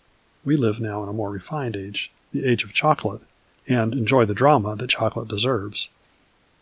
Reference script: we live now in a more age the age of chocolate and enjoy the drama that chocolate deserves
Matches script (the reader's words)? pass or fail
fail